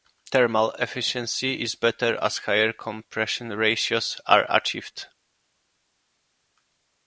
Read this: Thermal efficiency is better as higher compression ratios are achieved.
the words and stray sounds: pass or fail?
pass